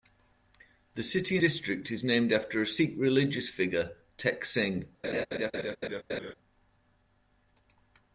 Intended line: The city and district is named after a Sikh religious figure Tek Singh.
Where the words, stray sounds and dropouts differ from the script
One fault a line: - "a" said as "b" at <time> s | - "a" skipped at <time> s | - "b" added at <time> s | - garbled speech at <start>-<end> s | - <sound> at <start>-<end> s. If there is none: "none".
- "and" skipped at 1.4 s
- laugh at 5.0-6.3 s